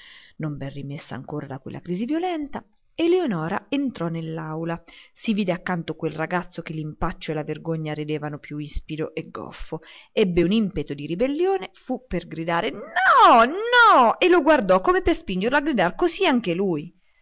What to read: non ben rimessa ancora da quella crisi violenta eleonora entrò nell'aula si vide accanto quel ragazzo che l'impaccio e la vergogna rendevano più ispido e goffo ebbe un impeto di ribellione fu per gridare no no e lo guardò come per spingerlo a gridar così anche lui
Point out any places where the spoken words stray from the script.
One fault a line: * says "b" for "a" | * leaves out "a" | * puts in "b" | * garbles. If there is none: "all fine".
all fine